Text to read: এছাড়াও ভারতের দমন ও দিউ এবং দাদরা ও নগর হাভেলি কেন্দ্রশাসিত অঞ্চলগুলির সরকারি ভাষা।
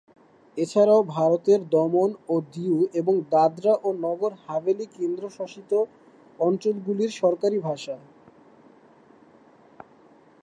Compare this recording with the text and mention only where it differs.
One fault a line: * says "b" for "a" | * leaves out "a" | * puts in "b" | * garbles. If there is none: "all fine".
all fine